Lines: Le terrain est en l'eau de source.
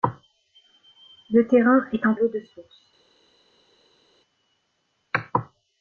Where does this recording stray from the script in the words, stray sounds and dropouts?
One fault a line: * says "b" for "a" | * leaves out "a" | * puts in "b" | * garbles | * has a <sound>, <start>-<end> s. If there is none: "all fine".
all fine